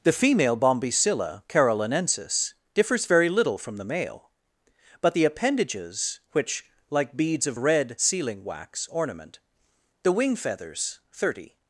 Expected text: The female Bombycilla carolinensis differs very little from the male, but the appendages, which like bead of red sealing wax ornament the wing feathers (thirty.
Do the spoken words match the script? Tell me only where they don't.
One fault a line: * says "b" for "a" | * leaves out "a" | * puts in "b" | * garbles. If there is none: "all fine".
* says "beads" for "bead"